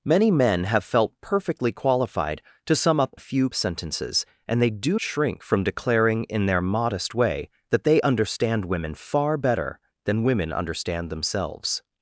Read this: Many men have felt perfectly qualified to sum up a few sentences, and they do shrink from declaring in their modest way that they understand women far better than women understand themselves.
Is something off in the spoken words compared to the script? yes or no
no